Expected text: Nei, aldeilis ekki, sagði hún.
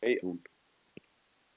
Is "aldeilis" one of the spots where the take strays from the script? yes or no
yes